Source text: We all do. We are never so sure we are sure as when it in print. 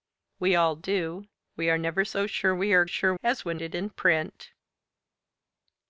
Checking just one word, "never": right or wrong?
right